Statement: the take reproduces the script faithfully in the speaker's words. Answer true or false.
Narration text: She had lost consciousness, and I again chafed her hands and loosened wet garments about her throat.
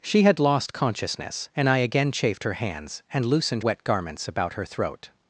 true